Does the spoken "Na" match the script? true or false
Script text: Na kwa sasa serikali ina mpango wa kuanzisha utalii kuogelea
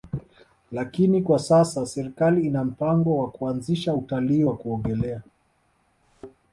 false